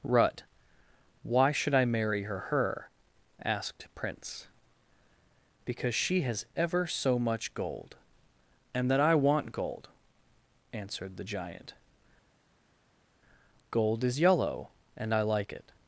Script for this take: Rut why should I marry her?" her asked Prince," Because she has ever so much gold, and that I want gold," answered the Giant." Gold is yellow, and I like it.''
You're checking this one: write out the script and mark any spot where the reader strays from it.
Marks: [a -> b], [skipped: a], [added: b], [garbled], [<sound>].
Rut why should I marry her?" her asked Prince," Because she has ever so much gold, and that I want gold," answered the Giant." Gold is yellow, and I like it.''